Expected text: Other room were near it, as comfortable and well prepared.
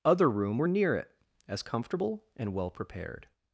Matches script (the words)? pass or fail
pass